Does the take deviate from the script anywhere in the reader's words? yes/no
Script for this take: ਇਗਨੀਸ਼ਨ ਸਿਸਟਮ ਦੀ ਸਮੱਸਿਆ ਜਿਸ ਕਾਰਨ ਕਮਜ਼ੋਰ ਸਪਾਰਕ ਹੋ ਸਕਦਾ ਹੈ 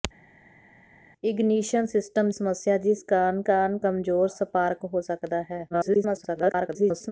yes